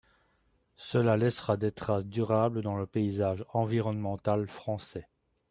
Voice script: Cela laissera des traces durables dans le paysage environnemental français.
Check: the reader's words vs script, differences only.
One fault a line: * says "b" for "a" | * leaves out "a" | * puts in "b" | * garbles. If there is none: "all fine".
all fine